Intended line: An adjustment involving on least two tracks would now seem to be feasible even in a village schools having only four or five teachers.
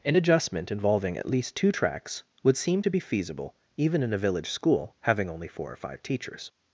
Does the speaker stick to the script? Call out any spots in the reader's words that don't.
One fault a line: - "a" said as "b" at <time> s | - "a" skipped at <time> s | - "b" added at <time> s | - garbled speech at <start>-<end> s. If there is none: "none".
- "on" said as "at" at 1.2 s
- "now" skipped at 2.5 s
- "schools" said as "school" at 4.5 s